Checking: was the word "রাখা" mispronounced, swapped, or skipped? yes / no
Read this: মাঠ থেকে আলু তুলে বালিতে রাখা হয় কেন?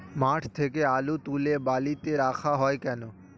no